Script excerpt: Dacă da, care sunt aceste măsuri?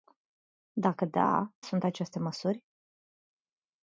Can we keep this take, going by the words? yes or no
no